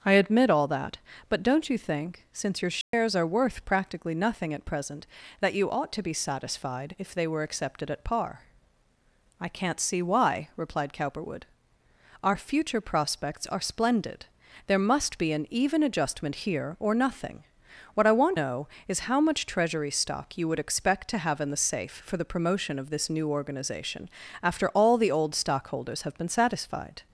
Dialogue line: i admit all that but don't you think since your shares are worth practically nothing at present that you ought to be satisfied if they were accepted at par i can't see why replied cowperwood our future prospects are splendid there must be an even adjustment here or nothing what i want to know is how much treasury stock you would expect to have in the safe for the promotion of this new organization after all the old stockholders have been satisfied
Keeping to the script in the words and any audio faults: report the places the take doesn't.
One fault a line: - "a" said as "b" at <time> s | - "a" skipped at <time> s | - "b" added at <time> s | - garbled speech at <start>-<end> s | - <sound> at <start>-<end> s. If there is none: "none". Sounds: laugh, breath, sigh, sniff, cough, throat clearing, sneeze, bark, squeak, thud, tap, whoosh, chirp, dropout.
- dropout at 2.8-2.9 s
- "to" skipped at 18.4 s